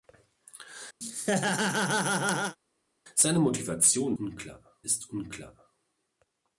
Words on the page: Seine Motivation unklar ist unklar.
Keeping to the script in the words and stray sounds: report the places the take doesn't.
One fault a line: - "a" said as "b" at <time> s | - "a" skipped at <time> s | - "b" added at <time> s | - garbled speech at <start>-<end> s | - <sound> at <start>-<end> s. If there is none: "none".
- laugh at 1.0-2.6 s